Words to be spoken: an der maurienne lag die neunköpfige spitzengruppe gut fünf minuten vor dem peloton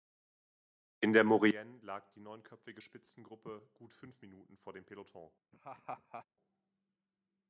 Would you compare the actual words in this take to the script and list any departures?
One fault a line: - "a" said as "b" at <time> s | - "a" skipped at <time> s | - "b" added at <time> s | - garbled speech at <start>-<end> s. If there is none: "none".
- "an" said as "in" at 1.0 s